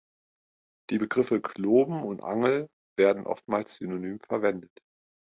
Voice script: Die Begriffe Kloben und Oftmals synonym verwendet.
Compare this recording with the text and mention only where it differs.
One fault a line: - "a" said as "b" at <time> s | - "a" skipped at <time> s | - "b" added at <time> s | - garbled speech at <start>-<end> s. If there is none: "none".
- "Angel werden" added at 2.2 s